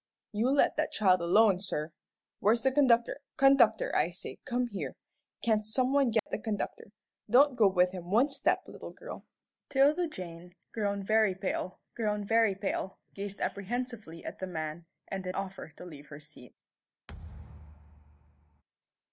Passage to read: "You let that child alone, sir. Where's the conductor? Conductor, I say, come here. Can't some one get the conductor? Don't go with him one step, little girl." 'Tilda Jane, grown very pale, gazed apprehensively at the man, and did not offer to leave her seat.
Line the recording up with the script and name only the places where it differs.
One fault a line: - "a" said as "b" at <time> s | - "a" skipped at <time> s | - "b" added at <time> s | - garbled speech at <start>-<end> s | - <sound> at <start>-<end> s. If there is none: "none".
- dropout at 6.2-6.3 s
- "grown very pale" added at 11.9 s
- "not" skipped at 15.4 s
- thud at 17.1-18.6 s